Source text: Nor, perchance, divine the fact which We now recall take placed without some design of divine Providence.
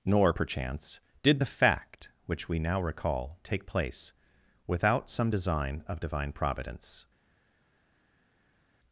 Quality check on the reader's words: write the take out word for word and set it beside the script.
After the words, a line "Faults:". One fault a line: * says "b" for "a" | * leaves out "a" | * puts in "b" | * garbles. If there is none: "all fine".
Nor, perchance, did the fact which We now recall take place without some design of divine Providence.
Faults:
* says "did" for "divine"
* says "place" for "placed"